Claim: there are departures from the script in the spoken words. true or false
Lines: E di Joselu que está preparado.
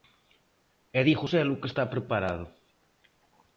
false